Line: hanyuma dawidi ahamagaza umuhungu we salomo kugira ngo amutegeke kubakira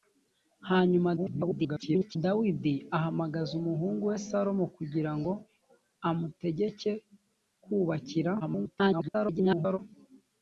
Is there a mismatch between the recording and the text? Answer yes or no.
yes